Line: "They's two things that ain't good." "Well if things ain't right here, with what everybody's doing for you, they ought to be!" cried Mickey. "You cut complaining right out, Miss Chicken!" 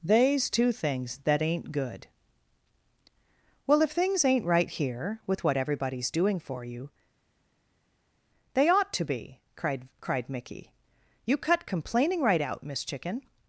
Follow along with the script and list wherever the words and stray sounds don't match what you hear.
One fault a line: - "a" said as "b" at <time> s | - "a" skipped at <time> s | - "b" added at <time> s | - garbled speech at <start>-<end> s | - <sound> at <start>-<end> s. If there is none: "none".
- "cried" added at 10.0 s